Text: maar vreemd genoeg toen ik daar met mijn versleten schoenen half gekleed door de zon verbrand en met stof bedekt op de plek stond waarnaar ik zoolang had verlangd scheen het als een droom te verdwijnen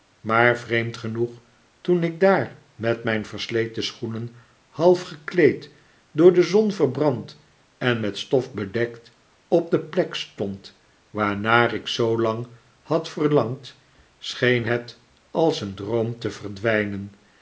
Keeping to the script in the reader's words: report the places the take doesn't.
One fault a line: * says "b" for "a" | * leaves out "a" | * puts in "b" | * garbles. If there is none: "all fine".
all fine